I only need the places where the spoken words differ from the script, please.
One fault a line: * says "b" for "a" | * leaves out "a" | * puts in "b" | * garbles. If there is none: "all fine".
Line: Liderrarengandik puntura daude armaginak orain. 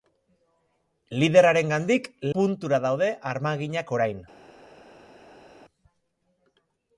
all fine